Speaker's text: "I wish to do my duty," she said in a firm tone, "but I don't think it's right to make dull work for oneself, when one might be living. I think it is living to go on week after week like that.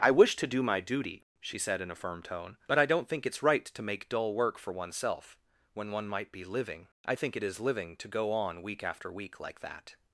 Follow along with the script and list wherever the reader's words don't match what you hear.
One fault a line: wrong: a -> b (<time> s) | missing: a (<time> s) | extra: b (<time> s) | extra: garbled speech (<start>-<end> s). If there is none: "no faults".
no faults